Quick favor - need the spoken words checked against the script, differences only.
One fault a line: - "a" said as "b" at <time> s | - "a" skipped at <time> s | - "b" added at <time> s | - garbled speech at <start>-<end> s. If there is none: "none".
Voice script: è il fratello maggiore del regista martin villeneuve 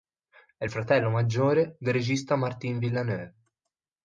none